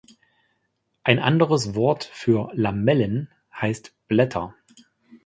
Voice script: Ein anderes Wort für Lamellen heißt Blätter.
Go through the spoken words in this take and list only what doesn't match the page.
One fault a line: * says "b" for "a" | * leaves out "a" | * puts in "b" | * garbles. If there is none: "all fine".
all fine